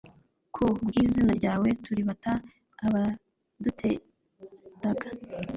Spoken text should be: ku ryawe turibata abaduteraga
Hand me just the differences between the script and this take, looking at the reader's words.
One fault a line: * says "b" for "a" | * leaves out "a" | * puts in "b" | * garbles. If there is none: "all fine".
* puts in "bw'izina"